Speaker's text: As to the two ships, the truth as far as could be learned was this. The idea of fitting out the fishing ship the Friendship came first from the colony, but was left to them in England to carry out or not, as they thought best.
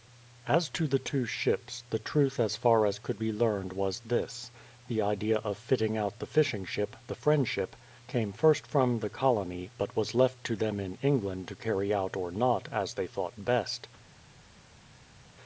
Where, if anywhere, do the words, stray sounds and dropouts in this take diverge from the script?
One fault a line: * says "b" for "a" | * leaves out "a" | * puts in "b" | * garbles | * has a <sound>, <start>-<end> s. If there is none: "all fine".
all fine